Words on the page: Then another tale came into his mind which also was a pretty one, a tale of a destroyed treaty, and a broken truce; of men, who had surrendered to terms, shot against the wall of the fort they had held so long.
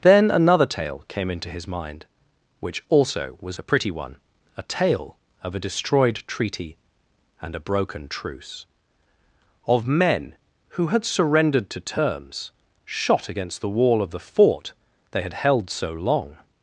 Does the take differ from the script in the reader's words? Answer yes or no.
no